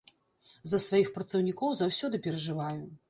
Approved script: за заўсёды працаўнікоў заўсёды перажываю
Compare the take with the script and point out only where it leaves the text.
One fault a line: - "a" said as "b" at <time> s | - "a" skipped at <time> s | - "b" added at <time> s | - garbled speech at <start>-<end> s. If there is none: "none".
- "заўсёды" said as "сваіх" at 0.8 s